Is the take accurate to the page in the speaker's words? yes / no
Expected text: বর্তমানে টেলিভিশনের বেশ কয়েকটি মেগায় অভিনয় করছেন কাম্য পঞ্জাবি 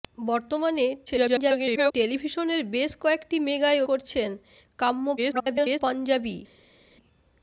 no